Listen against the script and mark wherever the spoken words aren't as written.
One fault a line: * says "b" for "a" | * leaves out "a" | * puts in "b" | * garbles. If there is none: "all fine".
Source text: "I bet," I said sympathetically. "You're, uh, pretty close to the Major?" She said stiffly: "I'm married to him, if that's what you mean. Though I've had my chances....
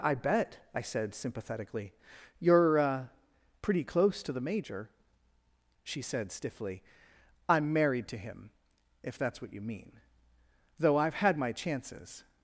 all fine